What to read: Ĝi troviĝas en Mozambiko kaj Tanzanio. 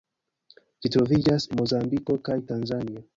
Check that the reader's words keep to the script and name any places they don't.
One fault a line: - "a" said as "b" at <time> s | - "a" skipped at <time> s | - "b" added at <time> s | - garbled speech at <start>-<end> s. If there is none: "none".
- "en" skipped at 1.5 s